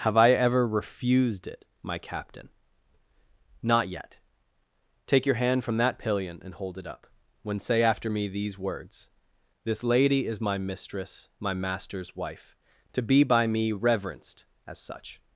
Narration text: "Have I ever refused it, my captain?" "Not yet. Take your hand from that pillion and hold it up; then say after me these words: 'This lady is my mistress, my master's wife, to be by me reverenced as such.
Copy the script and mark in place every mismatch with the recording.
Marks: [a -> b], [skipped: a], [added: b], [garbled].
"Have I ever refused it, my captain?" "Not yet. Take your hand from that pillion and hold it up; [then -> when] say after me these words: 'This lady is my mistress, my master's wife, to be by me reverenced as such.